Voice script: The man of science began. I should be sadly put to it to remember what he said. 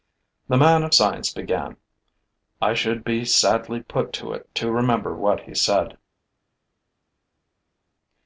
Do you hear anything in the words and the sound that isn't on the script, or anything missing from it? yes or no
no